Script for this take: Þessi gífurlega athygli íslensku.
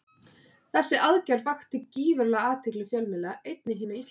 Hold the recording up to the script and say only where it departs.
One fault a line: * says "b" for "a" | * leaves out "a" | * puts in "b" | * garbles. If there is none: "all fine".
* puts in "aðgerð vakti"
* puts in "fjölmiðla einnig hinna"